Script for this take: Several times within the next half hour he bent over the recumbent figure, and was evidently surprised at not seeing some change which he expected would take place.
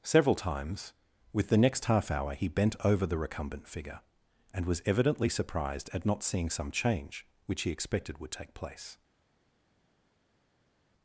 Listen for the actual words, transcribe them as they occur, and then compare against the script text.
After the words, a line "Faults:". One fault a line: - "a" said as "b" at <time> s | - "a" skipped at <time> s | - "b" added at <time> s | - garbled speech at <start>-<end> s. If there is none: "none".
Several times with the next half hour he bent over the recumbent figure, and was evidently surprised at not seeing some change which he expected would take place.
Faults:
- "within" said as "with" at 1.3 s